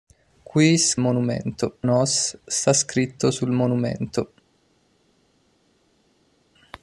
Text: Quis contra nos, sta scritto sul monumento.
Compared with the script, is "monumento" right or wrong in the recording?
right